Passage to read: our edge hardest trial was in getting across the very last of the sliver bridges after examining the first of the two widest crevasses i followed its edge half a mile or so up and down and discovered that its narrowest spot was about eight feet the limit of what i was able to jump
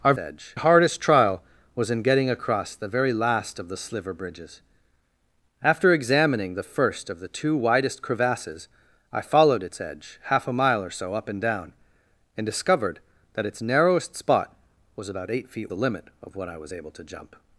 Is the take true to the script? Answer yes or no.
yes